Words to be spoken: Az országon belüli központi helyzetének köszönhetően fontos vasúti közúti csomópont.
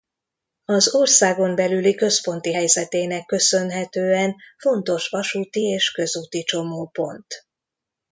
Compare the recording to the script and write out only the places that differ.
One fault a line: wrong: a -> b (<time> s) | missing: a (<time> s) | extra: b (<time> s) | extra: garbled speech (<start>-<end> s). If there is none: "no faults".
extra: és (5.6 s)